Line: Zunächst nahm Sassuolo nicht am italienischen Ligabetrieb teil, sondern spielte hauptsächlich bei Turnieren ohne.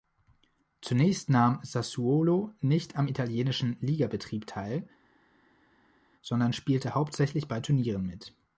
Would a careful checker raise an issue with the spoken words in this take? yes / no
yes